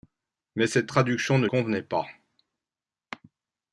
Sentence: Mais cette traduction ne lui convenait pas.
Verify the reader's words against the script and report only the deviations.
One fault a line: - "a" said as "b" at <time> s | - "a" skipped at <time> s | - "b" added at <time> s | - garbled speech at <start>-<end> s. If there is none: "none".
- "lui" skipped at 1.5 s